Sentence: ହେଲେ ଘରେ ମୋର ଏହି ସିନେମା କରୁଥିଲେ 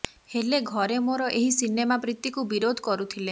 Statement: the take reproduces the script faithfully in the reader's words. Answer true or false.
false